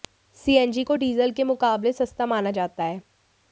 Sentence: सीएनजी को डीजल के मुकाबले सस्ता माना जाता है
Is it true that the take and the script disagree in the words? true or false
false